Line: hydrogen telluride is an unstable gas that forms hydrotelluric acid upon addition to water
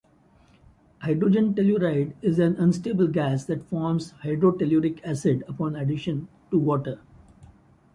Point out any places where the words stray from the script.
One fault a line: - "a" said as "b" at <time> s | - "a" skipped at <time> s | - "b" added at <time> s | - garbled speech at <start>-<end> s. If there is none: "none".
none